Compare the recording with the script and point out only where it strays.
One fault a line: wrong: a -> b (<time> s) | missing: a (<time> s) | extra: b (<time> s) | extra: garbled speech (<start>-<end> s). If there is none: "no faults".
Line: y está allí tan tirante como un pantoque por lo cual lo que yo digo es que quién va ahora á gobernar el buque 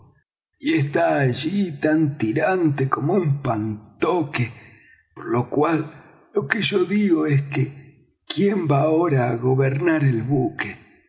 no faults